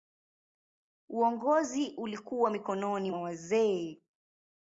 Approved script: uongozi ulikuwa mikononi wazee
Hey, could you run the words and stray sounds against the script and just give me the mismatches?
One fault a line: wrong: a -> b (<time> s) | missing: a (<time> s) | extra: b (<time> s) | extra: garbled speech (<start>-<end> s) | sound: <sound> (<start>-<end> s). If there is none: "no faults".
extra: mwa (3.1 s)